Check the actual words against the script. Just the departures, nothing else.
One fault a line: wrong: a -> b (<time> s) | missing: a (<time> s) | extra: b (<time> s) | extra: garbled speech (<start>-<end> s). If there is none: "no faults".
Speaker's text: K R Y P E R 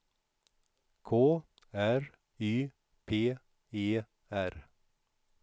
no faults